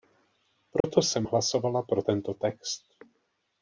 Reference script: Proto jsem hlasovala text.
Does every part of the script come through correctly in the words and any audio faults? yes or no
no